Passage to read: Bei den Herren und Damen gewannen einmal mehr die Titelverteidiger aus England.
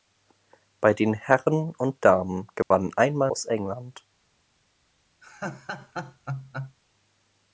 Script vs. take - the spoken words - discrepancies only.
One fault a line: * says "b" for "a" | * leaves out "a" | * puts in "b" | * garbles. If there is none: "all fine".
* leaves out "mehr die Titelverteidiger"